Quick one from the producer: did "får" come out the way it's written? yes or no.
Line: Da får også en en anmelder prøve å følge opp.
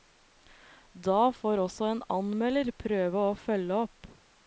yes